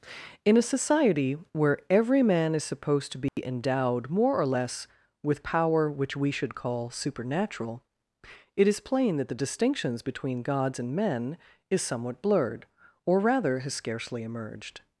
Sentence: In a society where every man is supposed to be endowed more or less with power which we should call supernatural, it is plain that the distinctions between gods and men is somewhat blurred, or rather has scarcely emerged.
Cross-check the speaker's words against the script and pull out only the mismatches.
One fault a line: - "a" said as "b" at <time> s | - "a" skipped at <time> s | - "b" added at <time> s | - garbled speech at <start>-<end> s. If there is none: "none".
none